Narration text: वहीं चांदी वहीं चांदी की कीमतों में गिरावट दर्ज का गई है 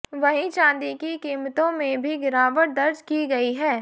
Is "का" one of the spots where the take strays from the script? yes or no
yes